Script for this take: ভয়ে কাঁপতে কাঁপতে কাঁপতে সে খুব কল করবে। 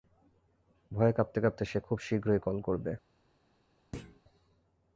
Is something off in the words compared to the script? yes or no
yes